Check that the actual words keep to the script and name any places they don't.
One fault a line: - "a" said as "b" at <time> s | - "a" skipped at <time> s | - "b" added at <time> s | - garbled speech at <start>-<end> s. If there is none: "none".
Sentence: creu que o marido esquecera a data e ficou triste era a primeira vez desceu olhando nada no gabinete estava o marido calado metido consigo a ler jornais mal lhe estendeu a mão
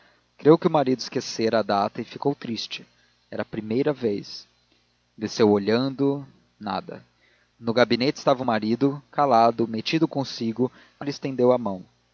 - "ler jornais mal" skipped at 11.0 s